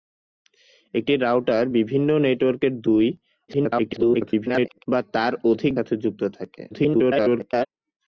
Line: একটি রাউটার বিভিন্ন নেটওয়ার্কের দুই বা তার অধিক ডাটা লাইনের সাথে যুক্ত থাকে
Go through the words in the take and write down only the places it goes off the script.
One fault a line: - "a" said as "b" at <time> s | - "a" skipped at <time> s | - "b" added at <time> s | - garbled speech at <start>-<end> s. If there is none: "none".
- garbled speech at 3.5-4.9 s
- "ডাটা লাইনের" skipped at 5.7 s
- garbled speech at 6.7-7.7 s